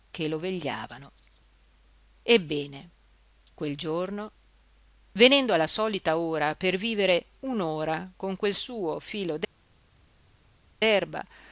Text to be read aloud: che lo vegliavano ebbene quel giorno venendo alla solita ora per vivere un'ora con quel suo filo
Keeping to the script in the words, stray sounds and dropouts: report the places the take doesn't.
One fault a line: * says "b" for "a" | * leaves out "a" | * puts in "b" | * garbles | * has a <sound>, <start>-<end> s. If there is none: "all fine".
all fine